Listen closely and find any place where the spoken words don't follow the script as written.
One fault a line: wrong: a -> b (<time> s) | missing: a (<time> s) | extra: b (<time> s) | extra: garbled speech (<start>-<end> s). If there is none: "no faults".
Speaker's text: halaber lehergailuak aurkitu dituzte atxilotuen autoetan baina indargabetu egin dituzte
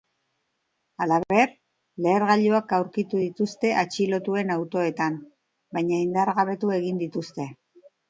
no faults